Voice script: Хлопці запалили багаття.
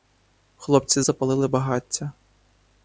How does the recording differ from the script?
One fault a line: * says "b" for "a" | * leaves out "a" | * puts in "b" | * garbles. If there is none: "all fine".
all fine